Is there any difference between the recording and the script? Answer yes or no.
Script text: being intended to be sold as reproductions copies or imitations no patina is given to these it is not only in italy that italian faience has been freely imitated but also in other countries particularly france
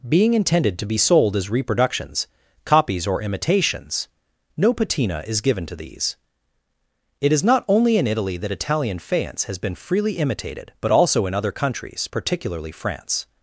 no